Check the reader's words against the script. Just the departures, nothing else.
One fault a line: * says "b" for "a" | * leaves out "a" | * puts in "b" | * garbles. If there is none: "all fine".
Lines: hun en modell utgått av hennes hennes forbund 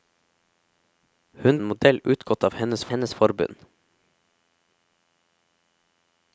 all fine